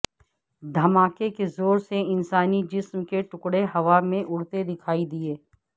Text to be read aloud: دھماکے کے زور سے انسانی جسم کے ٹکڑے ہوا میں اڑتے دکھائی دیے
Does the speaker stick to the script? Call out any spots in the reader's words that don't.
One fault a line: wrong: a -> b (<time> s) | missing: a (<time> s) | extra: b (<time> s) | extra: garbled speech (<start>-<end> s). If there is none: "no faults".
no faults